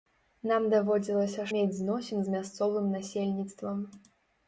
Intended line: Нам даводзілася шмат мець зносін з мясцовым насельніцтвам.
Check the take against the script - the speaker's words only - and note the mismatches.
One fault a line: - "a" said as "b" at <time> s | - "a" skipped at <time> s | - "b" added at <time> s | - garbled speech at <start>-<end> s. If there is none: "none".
- "шмат" skipped at 1.4 s